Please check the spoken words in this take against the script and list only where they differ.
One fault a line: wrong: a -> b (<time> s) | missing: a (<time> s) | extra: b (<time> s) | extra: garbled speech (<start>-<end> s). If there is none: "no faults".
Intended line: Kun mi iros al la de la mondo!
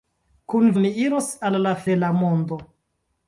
no faults